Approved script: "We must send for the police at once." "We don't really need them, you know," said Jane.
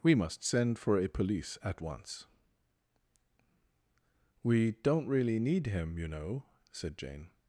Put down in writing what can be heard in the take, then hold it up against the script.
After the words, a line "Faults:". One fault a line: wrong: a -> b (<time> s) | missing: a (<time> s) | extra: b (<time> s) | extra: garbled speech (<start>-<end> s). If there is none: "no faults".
"We must send for a police at once." "We don't really need him, you know," said Jane.
Faults:
wrong: the -> a (1.0 s)
wrong: them -> him (5.7 s)